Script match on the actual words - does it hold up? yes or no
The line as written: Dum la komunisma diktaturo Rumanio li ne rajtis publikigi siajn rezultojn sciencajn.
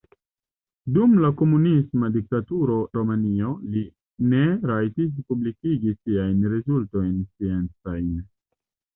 yes